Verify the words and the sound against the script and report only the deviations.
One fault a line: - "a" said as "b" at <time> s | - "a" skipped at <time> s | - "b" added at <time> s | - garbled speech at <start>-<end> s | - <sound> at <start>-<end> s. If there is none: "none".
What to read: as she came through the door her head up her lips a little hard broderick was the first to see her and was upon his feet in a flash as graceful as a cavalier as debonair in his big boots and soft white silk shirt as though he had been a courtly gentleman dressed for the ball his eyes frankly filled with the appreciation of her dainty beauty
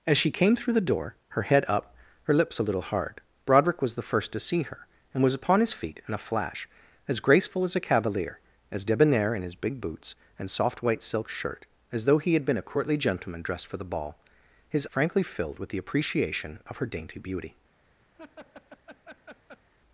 - "eyes" skipped at 14.9 s
- laugh at 18.1-19.7 s